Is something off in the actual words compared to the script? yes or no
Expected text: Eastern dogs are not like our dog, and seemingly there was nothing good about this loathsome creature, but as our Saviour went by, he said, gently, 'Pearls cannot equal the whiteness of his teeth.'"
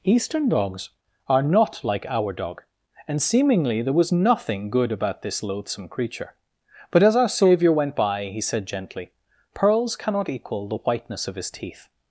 no